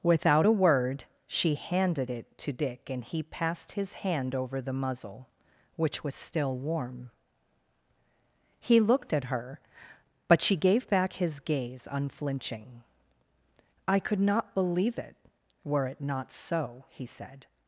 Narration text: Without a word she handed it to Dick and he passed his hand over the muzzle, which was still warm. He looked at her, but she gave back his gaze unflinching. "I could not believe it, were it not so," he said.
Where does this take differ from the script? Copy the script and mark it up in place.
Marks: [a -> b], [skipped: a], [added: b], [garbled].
Without a word she handed it to Dick and he passed his hand over the muzzle, which was still warm. He looked at her, but she gave back his gaze unflinching. "I could not believe it, were it not so," he said.